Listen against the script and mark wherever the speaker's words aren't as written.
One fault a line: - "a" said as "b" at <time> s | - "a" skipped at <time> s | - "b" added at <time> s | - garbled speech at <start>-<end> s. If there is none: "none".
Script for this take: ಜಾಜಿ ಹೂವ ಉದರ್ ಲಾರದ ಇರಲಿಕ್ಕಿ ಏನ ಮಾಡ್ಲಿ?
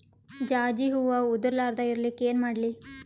none